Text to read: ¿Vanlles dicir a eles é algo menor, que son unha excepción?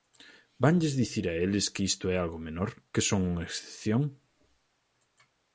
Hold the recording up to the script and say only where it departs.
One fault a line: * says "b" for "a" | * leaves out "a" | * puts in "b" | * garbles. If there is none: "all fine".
* puts in "que isto"